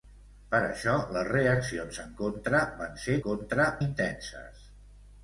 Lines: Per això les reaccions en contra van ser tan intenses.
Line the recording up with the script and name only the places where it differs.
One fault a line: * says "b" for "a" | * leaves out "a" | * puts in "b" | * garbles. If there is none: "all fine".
* says "contra" for "tan"